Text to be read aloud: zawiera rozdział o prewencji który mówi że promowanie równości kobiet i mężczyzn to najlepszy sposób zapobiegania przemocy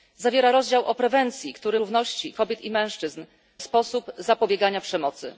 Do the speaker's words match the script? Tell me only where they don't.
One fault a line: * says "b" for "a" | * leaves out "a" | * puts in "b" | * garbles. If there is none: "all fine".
* leaves out "mówi że promowanie"
* leaves out "to najlepszy"